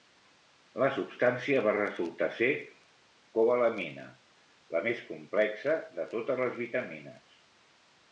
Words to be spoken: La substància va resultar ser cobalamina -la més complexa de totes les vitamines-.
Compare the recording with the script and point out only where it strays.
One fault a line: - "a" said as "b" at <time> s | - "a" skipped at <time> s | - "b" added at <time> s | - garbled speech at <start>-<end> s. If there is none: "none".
none